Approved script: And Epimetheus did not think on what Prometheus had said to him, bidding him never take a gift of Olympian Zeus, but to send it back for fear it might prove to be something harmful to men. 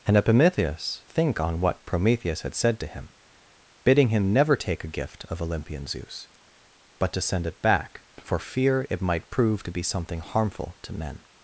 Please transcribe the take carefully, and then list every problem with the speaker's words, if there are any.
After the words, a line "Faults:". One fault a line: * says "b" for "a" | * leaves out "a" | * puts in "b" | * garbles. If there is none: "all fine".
And Epimetheus think on what Prometheus had said to him, bidding him never take a gift of Olympian Zeus, but to send it back for fear it might prove to be something harmful to men.
Faults:
* leaves out "did not"